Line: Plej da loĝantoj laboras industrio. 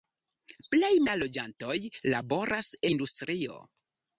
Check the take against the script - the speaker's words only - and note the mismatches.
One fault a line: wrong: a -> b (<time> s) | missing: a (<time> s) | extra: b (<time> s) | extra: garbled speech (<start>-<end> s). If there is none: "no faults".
no faults